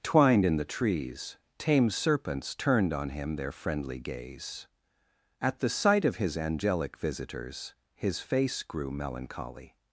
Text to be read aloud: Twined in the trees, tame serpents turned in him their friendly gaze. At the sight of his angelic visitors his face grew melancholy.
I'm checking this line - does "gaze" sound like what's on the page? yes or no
yes